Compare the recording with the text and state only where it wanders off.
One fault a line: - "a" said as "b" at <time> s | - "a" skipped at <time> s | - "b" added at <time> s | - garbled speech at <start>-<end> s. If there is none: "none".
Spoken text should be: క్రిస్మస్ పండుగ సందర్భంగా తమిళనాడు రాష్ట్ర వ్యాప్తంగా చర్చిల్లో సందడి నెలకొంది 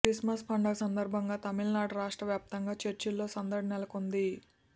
none